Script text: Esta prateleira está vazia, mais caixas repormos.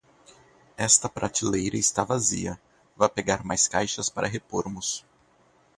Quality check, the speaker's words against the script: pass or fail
fail